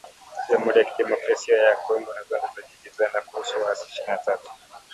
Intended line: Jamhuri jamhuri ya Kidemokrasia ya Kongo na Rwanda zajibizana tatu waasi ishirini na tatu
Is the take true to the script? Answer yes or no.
no